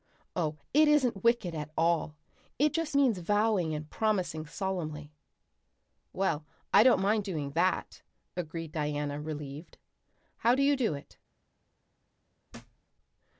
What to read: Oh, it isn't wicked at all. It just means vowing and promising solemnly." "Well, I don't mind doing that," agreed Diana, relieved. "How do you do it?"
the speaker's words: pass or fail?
pass